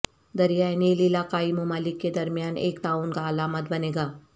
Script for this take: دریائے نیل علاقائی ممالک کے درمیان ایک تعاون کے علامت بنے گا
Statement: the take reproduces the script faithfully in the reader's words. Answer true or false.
false